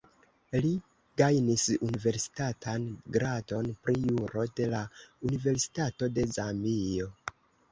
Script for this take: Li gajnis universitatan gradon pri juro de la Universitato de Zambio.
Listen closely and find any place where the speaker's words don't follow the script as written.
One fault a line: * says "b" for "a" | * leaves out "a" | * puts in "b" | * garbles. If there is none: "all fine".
all fine